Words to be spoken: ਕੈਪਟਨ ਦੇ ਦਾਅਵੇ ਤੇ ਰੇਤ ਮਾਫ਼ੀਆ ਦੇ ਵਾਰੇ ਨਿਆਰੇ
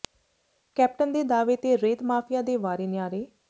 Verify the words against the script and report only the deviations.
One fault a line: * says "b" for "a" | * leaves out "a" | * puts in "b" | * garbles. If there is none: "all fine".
all fine